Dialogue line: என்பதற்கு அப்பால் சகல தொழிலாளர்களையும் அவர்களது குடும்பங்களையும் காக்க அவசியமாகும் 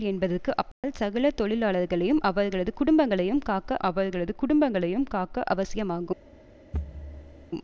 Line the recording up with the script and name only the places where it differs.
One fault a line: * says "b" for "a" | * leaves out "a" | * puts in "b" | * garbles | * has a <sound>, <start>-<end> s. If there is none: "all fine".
* has a dropout, 0.7-0.8 s
* puts in "அவர்களது குடும்பங்களையும் காக்க"
* has a thud, 6.7-7.5 s